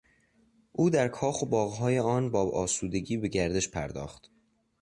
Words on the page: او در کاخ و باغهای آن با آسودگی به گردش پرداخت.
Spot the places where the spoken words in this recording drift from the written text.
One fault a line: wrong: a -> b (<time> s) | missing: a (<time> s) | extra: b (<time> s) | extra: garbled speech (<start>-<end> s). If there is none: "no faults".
no faults